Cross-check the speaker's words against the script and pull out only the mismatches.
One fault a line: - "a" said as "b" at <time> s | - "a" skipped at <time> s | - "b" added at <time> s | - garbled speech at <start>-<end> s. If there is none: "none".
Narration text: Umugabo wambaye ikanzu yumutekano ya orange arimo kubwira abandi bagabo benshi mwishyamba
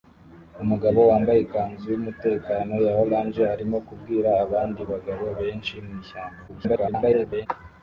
- garbled speech at 6.5-7.5 s